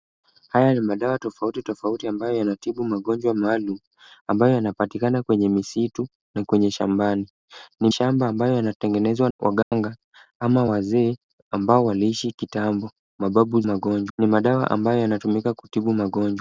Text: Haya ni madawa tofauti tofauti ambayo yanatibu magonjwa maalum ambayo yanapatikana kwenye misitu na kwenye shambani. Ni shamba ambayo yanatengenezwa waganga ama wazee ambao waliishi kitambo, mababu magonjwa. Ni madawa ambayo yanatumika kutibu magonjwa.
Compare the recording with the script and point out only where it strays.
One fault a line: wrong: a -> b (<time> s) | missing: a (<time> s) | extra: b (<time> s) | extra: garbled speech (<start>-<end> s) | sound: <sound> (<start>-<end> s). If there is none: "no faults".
sound: dropout (9.6-9.7 s)